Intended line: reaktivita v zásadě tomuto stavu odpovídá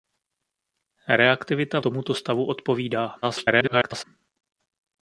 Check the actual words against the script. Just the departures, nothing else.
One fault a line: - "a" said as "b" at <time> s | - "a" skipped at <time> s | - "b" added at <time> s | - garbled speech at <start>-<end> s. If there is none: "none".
- "zásadě" skipped at 1.8 s
- garbled speech at 3.2-4.0 s